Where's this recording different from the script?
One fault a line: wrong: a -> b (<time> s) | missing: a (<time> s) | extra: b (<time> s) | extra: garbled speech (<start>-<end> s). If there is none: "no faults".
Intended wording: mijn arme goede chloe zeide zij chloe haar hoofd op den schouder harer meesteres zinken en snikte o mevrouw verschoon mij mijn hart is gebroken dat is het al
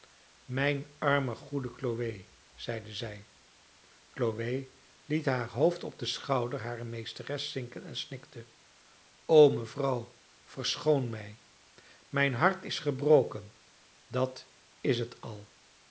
extra: liet (5.0 s)